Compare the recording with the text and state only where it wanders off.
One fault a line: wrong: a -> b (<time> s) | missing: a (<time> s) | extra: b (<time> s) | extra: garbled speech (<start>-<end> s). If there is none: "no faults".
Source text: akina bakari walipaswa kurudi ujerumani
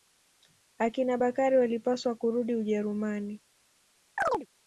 no faults